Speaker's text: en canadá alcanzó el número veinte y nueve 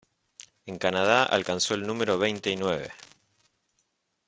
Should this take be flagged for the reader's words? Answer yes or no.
no